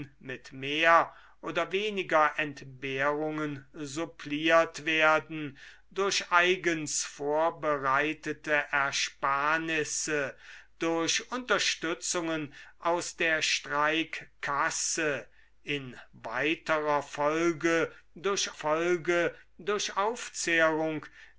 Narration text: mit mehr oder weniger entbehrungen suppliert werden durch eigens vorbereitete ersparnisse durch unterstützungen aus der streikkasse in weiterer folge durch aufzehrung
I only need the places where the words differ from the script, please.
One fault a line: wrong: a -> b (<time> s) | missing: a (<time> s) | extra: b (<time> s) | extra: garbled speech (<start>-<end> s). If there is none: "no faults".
extra: folge durch (18.5 s)